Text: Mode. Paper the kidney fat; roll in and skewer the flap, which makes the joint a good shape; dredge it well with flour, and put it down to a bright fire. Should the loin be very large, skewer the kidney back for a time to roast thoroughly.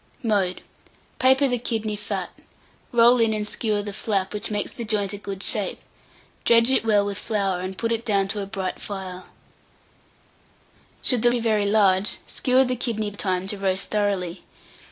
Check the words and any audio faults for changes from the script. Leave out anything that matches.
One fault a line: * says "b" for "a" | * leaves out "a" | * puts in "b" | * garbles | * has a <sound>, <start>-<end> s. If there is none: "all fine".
* leaves out "loin"
* leaves out "back for"